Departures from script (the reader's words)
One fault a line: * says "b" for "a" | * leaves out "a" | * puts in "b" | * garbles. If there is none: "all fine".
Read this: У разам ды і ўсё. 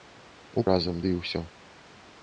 all fine